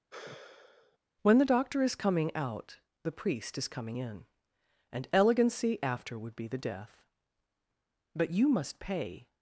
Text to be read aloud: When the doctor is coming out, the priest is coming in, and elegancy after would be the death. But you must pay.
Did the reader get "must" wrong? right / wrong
right